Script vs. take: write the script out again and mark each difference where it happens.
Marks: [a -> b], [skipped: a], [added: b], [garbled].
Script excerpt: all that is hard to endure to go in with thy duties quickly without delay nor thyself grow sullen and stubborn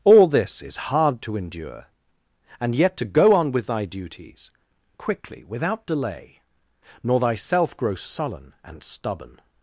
all [that -> this] is hard to endure [added: and yet] to go [in -> on] with thy duties quickly without delay nor thyself grow sullen and stubborn